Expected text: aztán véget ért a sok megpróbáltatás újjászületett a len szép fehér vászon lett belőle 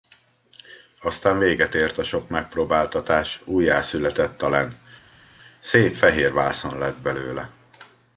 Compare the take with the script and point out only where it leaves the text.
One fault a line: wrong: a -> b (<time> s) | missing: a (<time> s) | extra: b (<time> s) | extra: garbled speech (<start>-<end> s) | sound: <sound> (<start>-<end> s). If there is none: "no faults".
no faults